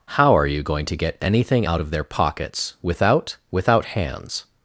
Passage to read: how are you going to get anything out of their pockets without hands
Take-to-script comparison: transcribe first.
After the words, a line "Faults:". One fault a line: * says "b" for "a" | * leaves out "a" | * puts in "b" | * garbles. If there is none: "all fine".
how are you going to get anything out of their pockets without without hands
Faults:
* puts in "without"